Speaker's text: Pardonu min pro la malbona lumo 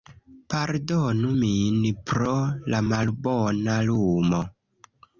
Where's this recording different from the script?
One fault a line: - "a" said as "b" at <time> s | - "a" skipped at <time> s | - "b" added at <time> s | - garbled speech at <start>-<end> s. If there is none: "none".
none